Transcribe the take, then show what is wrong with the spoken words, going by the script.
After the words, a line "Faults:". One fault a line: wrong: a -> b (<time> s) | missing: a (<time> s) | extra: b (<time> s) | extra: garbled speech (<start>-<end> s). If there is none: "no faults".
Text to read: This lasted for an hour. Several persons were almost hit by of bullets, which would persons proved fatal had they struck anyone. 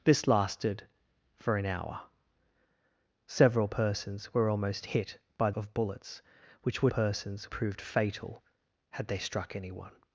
This lasted for an hour. Several persons were almost hit by of bullets, which would persons proved fatal had they struck anyone.
Faults:
no faults